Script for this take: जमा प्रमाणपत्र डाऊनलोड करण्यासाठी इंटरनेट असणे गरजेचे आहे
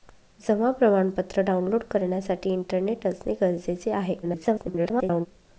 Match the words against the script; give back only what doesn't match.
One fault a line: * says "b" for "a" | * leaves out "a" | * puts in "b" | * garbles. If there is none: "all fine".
* garbles